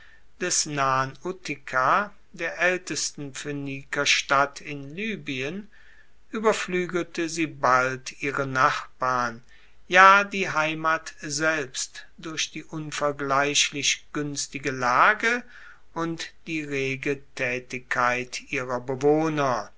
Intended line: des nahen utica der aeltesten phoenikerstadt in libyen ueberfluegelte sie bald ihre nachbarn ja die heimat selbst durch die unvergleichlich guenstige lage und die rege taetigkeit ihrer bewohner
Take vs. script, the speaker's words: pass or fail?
pass